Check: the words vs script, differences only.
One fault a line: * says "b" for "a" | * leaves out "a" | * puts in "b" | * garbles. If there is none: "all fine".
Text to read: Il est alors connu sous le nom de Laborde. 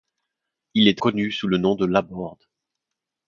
* leaves out "alors"